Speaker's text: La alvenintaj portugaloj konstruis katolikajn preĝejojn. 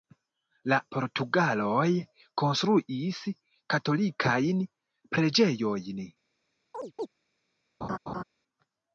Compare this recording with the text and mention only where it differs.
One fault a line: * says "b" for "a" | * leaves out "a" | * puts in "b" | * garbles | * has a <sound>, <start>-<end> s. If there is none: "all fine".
* leaves out "alvenintaj"
* has a chirp, 6.7-7.1 s
* has a laugh, 7.8-8.2 s